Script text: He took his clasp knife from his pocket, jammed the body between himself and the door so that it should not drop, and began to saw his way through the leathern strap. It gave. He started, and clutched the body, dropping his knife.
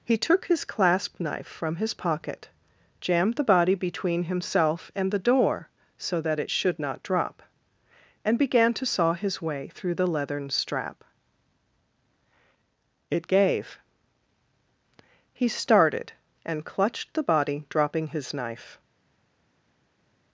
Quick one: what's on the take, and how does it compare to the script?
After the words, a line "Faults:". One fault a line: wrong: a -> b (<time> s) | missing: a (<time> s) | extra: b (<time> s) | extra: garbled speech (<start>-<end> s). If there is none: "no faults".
He took his clasp knife from his pocket, jammed the body between himself and the door so that it should not drop, and began to saw his way through the leathern strap. It gave. He started, and clutched the body, dropping his knife.
Faults:
no faults